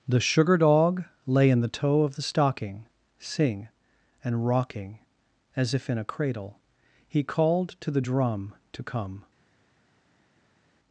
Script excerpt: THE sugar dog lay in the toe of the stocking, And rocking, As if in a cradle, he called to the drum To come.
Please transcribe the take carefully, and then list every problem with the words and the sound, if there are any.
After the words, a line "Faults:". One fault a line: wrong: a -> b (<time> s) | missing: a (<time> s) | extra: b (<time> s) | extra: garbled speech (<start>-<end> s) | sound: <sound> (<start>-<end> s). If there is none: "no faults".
THE sugar dog lay in the toe of the stocking, sing And rocking, As if in a cradle, he called to the drum To come.
Faults:
extra: sing (3.2 s)